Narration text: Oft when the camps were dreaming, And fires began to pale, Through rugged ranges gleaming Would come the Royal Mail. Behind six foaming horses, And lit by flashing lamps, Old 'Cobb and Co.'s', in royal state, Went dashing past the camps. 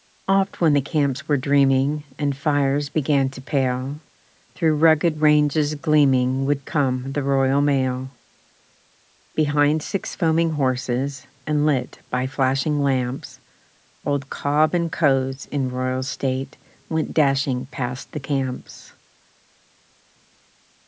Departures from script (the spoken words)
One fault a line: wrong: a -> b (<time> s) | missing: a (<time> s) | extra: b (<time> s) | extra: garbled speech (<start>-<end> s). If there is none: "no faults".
no faults